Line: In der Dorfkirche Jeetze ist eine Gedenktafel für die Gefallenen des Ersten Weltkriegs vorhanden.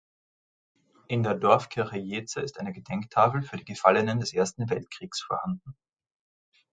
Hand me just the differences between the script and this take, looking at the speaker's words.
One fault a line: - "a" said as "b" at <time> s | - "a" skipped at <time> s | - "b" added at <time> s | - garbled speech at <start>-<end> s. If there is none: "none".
none